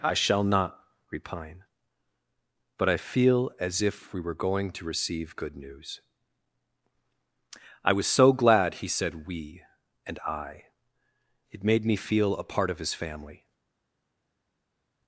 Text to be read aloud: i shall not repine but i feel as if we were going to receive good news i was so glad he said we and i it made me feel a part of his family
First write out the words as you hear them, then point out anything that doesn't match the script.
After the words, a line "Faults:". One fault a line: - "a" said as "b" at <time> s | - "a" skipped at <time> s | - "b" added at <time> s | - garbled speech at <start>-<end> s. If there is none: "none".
i shall not repine but i feel as if we were going to receive good news i was so glad he said we and i it made me feel a part of his family
Faults:
none